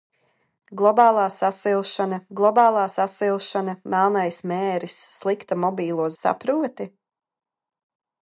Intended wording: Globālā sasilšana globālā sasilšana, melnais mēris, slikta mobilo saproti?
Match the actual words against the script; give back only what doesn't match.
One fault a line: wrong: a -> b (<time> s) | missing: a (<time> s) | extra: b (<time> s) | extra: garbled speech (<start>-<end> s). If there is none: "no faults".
no faults